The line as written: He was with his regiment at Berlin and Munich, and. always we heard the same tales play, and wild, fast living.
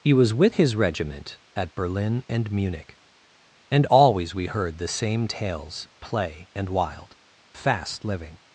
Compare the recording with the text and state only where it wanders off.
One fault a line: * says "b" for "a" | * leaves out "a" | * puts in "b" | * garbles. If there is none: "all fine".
all fine